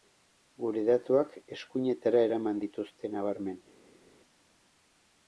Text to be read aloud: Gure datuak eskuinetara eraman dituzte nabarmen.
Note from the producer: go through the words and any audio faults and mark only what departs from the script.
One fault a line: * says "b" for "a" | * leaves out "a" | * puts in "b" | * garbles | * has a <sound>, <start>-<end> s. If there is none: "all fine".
all fine